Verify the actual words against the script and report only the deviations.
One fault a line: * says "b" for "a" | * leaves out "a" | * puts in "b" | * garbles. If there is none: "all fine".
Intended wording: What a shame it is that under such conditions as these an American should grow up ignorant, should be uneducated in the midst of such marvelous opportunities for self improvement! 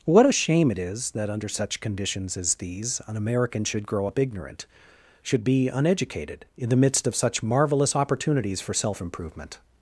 all fine